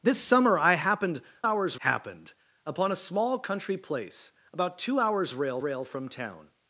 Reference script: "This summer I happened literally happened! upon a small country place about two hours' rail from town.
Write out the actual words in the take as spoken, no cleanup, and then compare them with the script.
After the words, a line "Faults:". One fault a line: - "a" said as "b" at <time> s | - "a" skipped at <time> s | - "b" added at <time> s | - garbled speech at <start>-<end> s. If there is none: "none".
"This summer I happened hours happened! upon a small country place about two hours' rail rail from town.
Faults:
- "literally" said as "hours" at 1.4 s
- "rail" added at 5.6 s